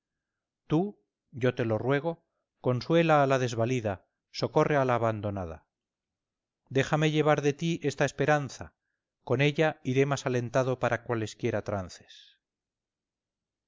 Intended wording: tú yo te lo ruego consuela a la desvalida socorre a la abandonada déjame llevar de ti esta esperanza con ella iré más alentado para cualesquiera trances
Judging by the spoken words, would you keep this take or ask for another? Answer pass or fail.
pass